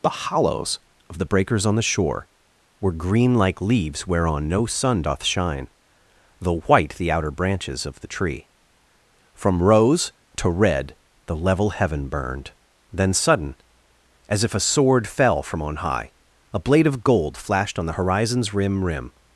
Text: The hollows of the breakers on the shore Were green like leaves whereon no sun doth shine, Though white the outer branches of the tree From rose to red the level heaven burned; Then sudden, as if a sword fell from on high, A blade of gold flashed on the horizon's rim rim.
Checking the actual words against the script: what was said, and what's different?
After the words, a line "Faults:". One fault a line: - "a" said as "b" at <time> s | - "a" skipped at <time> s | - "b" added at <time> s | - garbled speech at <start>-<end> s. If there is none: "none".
The hollows of the breakers on the shore Were green like leaves whereon no sun doth shine, Though white the outer branches of the tree From rose to red the level heaven burned; Then sudden, as if a sword fell from on high, A blade of gold flashed on the horizon's rim rim.
Faults:
none